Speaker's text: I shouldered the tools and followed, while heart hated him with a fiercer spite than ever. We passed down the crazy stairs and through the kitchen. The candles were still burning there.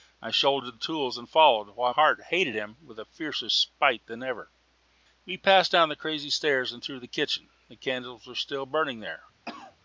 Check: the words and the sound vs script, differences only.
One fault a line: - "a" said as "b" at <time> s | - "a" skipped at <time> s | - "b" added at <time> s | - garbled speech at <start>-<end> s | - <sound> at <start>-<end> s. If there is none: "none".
- cough at 9.5-9.8 s